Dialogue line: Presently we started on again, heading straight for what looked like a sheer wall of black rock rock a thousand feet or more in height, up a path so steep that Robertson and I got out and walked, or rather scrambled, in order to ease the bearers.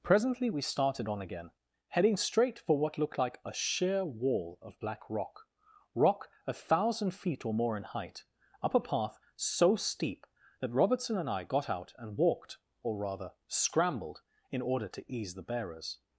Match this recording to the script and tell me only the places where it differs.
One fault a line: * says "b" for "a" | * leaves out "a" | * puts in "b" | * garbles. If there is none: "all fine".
all fine